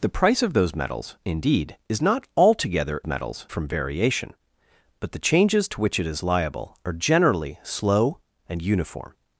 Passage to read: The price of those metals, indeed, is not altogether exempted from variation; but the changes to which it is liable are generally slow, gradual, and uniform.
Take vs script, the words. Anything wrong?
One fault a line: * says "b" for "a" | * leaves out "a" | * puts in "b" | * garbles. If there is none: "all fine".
* says "metals" for "exempted"
* leaves out "gradual"